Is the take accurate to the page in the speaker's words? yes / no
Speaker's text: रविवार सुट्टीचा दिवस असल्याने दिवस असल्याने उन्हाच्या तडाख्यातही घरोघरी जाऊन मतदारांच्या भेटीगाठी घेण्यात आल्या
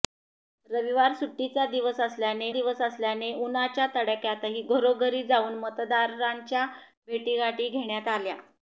yes